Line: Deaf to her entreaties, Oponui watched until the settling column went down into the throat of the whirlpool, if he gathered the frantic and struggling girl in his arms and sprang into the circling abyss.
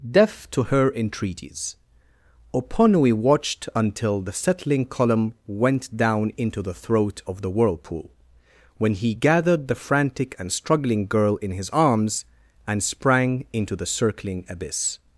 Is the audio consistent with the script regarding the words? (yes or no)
no